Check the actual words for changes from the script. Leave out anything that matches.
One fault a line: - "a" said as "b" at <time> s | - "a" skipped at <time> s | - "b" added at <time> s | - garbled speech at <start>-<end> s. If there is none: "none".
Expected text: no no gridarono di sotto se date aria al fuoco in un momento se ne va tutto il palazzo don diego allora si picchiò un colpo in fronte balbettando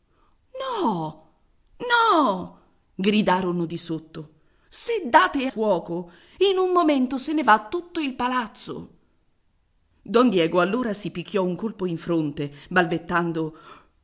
- "aria al" skipped at 5.5 s